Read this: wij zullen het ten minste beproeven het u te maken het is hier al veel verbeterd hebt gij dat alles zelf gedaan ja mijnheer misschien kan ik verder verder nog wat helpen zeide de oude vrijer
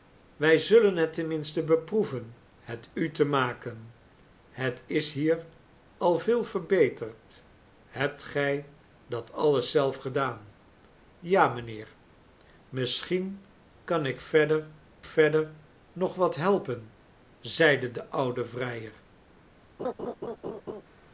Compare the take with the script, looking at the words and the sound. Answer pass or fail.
fail